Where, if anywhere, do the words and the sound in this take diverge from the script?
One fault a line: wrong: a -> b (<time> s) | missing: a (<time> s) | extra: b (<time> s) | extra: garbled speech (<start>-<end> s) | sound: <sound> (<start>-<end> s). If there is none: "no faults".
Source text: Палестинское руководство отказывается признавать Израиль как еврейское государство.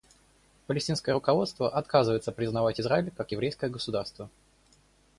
no faults